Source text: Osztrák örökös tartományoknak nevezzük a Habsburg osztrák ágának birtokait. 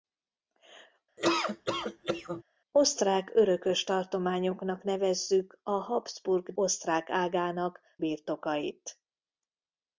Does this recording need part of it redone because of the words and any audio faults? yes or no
yes